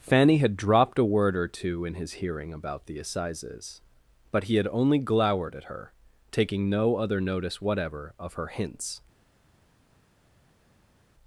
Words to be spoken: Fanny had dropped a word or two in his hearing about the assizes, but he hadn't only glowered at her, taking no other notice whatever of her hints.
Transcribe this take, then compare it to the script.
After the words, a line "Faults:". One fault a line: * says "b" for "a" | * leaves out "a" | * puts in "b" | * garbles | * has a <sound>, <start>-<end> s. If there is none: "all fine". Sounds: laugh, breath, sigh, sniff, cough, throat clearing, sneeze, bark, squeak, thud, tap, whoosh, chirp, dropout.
Fanny had dropped a word or two in his hearing about the assizes, but he had only glowered at her, taking no other notice whatever of her hints.
Faults:
* says "had" for "hadn't"